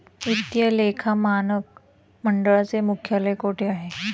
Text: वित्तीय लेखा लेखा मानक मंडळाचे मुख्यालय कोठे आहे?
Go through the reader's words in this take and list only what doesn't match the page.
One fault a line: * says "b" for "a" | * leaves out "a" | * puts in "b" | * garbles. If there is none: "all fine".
* leaves out "लेखा"